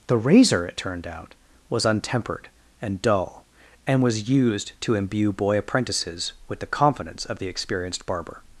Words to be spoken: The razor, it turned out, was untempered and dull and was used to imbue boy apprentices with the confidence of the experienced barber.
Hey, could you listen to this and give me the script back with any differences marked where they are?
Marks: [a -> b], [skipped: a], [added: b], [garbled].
The razor, it turned out, was untempered and dull and was used to imbue boy apprentices with the confidence of the experienced barber.